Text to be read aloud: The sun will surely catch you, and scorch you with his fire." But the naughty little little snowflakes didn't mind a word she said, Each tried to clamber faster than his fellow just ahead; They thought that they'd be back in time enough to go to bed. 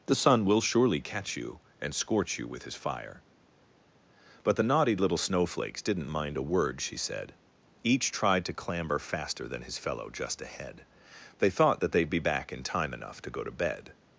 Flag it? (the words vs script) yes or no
yes